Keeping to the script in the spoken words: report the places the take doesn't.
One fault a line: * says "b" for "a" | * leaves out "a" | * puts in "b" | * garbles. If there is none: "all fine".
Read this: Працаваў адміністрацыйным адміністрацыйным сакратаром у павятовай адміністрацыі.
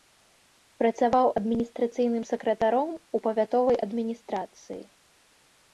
* leaves out "адміністрацыйным"